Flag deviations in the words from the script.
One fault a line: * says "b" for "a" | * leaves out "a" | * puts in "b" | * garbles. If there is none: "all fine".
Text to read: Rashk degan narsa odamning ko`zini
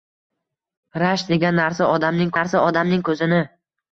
* puts in "narsa odamning"